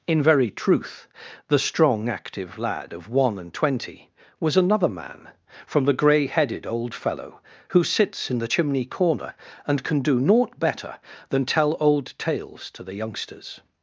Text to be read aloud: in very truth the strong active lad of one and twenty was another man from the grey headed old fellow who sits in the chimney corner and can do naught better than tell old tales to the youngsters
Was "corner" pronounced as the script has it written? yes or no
yes